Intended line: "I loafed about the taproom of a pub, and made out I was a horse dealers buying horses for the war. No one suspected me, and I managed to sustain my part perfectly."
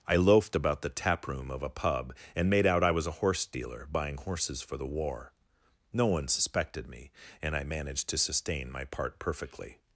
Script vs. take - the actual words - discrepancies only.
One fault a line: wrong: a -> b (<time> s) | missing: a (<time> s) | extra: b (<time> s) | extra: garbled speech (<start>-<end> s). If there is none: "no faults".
wrong: dealers -> dealer (3.5 s)